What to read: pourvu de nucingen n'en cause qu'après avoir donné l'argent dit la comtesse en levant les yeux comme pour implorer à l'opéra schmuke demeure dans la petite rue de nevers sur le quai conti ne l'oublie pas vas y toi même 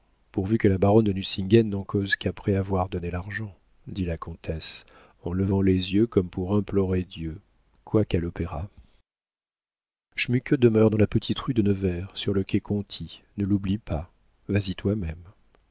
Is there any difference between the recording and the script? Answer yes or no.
yes